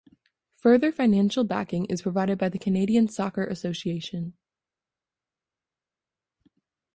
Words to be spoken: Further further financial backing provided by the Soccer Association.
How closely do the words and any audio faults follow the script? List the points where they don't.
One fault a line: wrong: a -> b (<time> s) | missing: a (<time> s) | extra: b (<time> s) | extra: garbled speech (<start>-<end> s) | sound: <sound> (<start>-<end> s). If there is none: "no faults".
missing: further (0.9 s)
extra: is (1.9 s)
extra: Canadian (2.6 s)